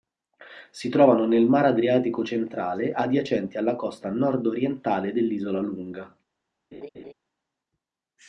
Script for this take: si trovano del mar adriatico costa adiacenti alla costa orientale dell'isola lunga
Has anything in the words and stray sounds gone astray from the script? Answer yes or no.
yes